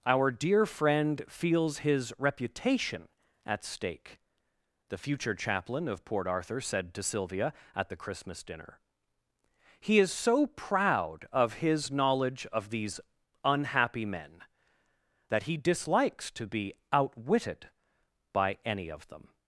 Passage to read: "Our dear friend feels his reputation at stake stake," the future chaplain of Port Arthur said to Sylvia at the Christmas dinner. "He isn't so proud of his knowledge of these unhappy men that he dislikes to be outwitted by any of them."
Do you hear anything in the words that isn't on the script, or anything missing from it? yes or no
yes